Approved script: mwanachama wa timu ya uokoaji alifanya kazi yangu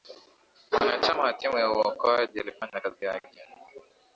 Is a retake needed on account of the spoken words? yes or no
yes